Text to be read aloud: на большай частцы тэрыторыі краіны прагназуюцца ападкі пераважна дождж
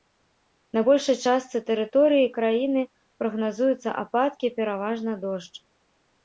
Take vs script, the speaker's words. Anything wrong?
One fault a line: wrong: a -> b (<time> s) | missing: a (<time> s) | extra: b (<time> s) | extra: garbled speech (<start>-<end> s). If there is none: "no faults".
no faults